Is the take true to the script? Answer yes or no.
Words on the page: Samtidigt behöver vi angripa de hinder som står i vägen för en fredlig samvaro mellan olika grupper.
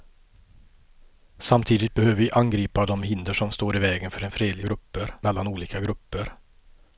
no